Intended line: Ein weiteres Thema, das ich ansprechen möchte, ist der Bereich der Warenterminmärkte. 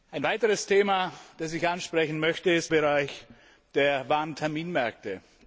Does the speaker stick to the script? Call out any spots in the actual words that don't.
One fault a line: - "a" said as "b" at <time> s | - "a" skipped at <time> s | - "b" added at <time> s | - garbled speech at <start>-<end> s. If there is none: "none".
- "der" skipped at 2.7 s